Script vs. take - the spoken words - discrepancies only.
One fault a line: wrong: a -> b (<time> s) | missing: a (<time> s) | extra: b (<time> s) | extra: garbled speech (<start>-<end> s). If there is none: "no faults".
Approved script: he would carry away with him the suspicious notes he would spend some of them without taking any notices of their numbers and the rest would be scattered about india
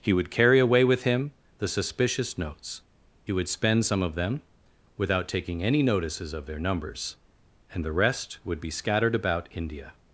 no faults